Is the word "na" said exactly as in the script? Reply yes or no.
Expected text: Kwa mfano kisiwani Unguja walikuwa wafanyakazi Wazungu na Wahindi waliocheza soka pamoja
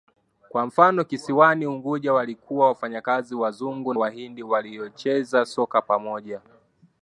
no